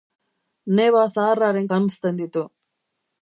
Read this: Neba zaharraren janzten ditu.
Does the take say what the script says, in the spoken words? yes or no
yes